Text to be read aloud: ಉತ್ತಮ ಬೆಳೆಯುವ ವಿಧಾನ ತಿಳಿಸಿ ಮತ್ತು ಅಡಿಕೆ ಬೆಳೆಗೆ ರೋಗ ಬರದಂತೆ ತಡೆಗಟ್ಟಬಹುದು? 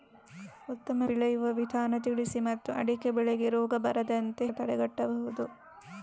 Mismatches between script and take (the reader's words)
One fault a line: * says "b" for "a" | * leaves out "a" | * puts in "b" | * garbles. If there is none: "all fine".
all fine